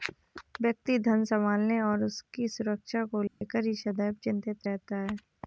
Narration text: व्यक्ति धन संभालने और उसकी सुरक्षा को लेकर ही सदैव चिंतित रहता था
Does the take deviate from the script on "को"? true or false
false